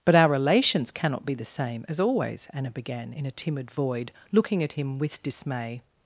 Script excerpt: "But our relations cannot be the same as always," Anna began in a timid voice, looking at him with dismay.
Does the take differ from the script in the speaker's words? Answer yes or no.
yes